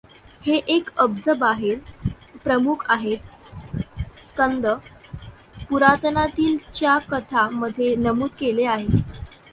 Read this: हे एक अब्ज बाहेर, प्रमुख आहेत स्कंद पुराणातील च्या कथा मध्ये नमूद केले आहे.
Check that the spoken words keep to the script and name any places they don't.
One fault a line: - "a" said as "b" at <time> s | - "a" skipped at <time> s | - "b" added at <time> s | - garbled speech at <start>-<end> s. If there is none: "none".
none